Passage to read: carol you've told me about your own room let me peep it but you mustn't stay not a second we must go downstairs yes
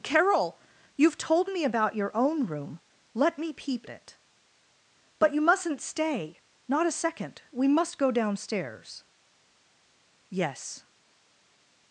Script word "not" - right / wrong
right